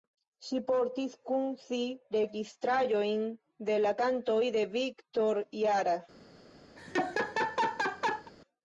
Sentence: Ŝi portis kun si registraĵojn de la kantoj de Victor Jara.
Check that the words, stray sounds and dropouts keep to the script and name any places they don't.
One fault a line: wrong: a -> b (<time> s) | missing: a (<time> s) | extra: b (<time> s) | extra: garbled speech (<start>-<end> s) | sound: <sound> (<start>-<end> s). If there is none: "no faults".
sound: laugh (6.8-8.3 s)